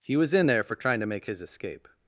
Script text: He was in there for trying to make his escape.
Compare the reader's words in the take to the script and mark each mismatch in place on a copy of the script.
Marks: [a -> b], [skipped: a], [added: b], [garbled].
He was in there for trying to make his escape.